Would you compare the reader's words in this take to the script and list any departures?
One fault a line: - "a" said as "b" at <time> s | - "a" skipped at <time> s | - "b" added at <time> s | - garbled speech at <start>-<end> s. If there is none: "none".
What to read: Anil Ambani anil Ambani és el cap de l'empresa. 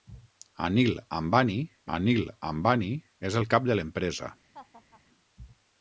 none